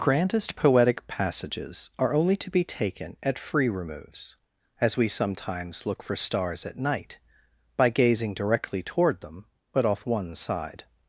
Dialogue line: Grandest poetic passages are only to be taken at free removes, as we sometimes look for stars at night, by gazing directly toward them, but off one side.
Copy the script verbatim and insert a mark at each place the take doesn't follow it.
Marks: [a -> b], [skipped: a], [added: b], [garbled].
Grandest poetic passages are only to be taken at free removes, as we sometimes look for stars at night, by gazing directly toward them, but off one side.